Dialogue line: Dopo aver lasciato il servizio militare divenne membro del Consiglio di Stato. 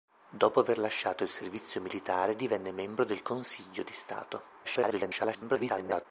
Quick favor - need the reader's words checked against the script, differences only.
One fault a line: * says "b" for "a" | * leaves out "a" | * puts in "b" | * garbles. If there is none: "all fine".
* garbles